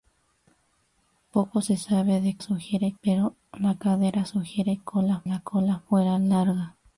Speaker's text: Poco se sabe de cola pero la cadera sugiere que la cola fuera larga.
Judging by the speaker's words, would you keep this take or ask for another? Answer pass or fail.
fail